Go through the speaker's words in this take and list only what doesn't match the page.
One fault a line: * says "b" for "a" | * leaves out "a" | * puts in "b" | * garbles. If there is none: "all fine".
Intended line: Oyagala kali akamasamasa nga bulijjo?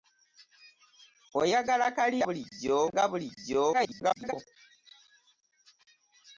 * says "bulijjo" for "akamasamasa"
* garbles